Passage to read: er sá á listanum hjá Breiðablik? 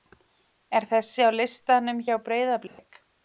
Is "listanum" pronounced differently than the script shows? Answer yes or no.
no